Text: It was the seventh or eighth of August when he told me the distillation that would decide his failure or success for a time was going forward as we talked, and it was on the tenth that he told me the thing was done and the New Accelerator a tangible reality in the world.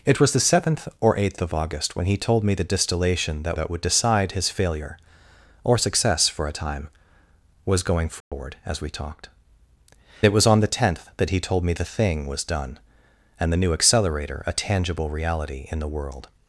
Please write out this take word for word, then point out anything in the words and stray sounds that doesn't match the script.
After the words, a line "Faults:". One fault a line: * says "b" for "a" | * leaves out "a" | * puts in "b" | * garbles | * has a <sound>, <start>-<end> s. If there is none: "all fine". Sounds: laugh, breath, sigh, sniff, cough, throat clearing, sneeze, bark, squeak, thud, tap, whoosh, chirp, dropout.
It was the seventh or eighth of August when he told me the distillation that that would decide his failure or success for a time was going forward as we talked, it was on the tenth that he told me the thing was done and the New Accelerator a tangible reality in the world.
Faults:
* puts in "that"
* has a dropout, 8.2-8.3 s
* leaves out "and"